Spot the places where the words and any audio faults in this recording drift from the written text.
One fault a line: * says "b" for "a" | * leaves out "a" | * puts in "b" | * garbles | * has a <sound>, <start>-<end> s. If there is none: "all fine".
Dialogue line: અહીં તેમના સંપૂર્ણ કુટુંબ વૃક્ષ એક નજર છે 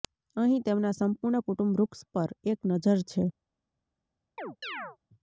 * puts in "પર"
* has a chirp, 4.4-5.0 s